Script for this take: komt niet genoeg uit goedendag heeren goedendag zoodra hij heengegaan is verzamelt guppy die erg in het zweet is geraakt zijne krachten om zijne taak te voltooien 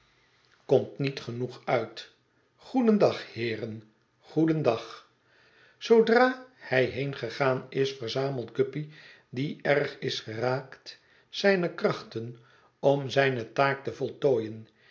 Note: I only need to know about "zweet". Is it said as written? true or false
false